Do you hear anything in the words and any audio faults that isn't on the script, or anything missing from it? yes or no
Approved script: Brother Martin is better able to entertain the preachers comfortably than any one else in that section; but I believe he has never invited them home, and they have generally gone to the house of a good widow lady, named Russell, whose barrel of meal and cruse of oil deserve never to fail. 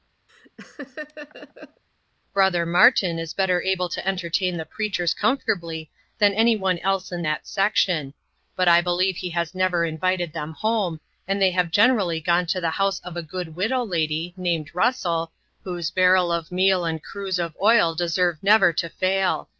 yes